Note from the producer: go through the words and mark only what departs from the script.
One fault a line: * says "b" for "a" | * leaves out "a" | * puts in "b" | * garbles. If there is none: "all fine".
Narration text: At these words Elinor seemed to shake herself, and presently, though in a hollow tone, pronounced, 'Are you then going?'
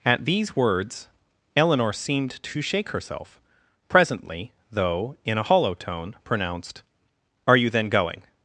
* leaves out "and"